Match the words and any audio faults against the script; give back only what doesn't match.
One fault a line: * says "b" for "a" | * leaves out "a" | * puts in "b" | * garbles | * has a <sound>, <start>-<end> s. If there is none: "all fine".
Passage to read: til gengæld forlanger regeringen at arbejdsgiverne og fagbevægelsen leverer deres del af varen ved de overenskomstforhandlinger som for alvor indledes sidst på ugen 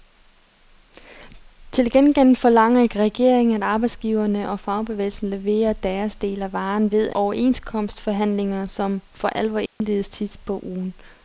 * leaves out "de"
* has a dropout, 9.7-9.8 s